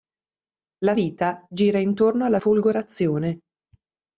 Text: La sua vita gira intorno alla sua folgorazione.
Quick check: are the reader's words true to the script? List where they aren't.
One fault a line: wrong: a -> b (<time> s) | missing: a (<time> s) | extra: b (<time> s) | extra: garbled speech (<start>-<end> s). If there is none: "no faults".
missing: sua (0.9 s)
missing: sua (2.4 s)